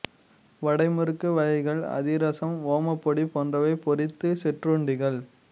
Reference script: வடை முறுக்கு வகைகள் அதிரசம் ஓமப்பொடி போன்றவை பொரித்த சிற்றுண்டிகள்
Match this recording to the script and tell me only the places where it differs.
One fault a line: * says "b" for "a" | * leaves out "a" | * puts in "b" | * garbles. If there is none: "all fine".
all fine